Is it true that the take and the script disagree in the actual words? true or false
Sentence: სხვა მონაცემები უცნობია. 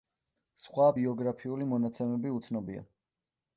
true